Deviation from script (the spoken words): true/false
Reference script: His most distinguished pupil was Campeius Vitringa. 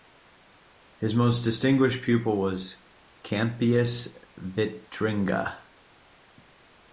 false